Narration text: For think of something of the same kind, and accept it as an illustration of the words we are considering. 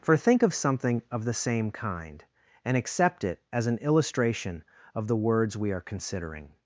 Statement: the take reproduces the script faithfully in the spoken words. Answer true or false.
true